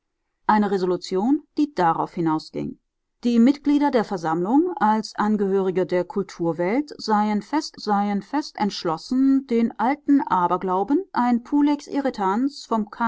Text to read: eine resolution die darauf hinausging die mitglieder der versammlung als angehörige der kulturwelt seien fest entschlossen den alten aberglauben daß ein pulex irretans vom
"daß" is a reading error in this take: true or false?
true